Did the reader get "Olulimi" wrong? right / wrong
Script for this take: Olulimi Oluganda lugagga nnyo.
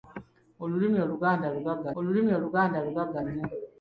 right